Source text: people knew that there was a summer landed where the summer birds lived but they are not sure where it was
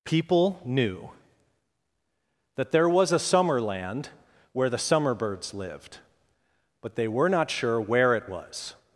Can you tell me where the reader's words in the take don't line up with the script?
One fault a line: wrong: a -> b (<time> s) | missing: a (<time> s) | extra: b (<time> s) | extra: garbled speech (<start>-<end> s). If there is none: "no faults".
wrong: landed -> land (3.6 s)
wrong: are -> were (7.1 s)